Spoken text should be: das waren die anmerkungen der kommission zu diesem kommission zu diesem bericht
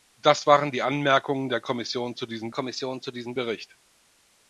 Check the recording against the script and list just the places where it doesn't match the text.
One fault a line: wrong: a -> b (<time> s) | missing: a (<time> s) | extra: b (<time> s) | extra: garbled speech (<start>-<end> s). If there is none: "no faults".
no faults